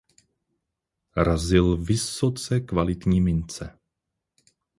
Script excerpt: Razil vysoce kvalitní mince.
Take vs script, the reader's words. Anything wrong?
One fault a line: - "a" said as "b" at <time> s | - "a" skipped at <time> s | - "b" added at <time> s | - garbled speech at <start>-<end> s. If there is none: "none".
none